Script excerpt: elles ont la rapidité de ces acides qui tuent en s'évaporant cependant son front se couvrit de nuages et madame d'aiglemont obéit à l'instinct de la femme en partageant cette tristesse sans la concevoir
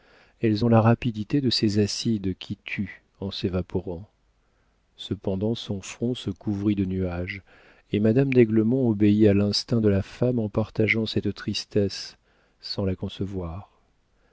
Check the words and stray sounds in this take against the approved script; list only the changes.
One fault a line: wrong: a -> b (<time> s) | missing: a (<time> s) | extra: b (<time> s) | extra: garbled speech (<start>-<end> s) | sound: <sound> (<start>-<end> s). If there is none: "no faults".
no faults